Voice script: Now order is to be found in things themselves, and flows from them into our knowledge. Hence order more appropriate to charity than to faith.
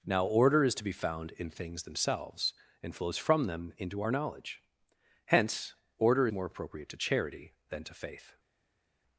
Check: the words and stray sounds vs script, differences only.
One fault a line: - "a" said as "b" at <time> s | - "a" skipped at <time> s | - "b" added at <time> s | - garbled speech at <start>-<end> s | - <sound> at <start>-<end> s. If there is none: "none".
none